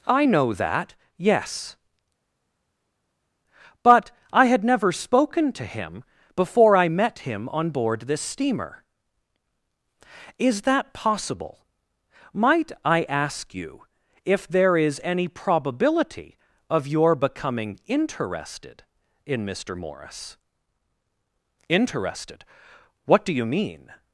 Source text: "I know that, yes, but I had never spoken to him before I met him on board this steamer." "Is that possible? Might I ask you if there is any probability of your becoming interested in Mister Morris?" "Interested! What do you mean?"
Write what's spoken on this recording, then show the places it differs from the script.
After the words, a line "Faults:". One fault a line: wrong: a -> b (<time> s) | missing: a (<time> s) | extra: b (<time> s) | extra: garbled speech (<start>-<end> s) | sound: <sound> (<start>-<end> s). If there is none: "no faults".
"I know that, yes, but I had never spoken to him before I met him on board this steamer." "Is that possible? Might I ask you if there is any probability of your becoming interested in Mister Morris?" "Interested! What do you mean?"
Faults:
no faults